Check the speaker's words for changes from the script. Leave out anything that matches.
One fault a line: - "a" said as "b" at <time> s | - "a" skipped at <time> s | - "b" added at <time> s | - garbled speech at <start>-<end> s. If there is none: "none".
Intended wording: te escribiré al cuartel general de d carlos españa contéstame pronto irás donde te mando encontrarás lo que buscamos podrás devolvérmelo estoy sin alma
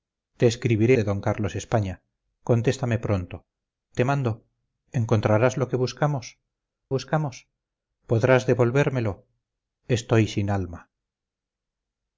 - "al cuartel general" skipped at 1.0 s
- "irás donde" skipped at 3.4 s
- "buscamos" added at 7.0 s